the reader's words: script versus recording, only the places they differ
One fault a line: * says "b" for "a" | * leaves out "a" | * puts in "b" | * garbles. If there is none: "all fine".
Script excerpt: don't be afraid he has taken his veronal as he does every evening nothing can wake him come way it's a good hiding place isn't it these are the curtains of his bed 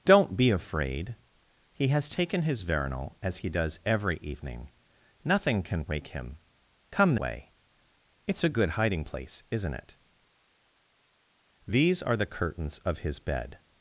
all fine